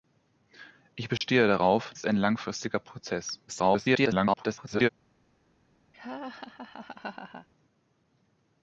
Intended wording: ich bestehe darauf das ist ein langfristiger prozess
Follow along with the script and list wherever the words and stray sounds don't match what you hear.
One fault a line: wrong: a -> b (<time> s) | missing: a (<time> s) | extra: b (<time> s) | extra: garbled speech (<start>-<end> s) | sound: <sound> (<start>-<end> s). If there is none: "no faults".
sound: dropout (1.2-1.2 s)
missing: das (1.9 s)
extra: garbled speech (3.5-4.9 s)
sound: laugh (5.9-7.5 s)